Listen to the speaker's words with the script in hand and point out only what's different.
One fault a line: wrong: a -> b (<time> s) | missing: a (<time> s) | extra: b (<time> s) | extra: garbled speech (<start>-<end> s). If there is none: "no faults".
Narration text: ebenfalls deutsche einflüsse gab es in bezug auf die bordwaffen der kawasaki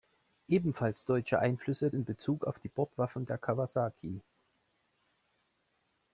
missing: gab es (1.9 s)